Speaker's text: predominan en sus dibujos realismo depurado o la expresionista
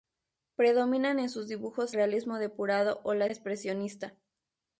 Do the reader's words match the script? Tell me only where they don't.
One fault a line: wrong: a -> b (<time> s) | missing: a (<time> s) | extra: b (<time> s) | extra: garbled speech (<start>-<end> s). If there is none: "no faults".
no faults